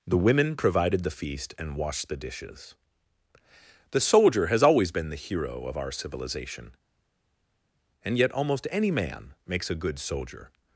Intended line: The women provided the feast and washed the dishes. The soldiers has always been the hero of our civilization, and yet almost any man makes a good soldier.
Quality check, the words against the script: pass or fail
fail